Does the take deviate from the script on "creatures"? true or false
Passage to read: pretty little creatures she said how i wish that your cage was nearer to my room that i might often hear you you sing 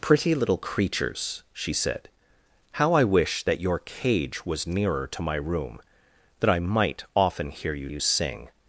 false